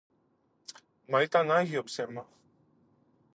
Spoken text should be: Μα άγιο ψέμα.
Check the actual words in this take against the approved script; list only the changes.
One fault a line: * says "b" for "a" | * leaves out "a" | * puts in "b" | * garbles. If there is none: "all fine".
* puts in "ήταν"